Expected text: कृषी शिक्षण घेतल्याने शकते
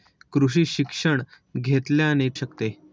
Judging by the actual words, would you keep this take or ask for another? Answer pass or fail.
pass